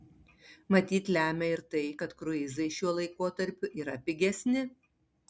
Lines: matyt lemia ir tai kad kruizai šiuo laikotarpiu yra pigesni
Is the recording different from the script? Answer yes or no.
no